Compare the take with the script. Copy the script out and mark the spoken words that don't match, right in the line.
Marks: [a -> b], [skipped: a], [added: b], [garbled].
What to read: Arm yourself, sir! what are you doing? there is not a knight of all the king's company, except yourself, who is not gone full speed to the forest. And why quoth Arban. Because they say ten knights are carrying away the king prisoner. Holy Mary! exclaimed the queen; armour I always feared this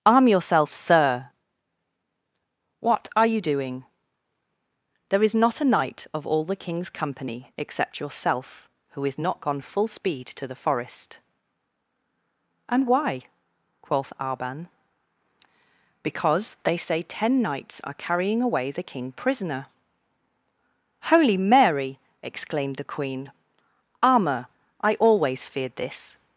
Arm yourself, sir! what are you doing? there is not a knight of all the king's company, except yourself, who is not gone full speed to the forest. And why quoth Arban. Because they say ten knights are carrying away the king prisoner. Holy Mary! exclaimed the queen; armour I always feared this